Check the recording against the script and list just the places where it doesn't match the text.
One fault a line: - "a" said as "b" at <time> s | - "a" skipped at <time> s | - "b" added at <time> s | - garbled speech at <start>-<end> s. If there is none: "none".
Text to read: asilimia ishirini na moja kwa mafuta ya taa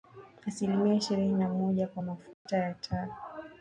none